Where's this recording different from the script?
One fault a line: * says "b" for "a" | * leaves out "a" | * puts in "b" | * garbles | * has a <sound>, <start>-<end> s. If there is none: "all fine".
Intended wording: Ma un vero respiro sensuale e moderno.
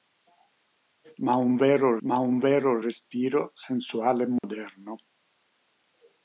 * puts in "ma un vero"
* has a dropout, 4.4-4.4 s